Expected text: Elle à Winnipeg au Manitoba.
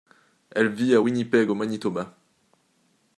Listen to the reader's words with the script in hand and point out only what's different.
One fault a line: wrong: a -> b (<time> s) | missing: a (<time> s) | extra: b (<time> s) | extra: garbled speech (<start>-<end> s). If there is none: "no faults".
extra: vit (0.7 s)